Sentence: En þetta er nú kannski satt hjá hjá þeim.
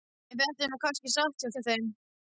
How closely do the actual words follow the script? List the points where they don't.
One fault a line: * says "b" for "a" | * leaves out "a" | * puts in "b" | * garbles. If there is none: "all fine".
all fine